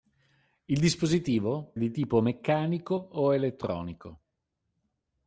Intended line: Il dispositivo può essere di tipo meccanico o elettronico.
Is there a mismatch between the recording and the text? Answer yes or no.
yes